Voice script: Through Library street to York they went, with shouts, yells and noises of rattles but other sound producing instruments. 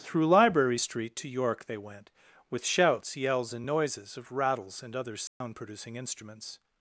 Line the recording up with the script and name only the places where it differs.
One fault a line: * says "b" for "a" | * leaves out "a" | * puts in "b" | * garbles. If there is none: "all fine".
* says "and" for "but"